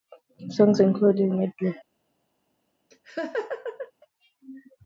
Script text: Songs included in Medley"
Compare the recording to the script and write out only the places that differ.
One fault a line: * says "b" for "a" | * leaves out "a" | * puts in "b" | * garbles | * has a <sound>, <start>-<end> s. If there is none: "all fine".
* has a laugh, 2.9-3.9 s